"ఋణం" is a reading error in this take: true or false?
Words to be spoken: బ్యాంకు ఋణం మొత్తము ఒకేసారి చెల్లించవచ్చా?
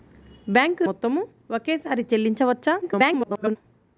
true